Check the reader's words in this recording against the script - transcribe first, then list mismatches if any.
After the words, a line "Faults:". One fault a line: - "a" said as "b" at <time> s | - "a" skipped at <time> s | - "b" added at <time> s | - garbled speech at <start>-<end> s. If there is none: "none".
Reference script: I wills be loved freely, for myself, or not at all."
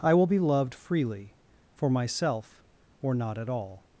I will be loved freely, for myself, or not at all."
Faults:
- "wills" said as "will" at 0.1 s